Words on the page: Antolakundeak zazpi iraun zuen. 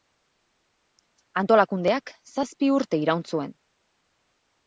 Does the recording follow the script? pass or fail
fail